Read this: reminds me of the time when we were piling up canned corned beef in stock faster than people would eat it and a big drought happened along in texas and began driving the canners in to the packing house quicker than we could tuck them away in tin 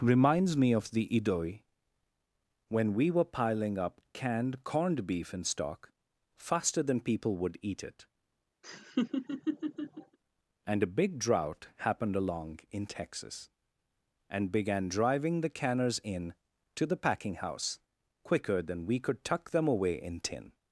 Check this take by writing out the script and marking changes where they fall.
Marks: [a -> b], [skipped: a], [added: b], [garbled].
reminds me of the [time -> idoi] when we were piling up canned corned beef in stock faster than people would eat it and a big drought happened along in texas and began driving the canners in to the packing house quicker than we could tuck them away in tin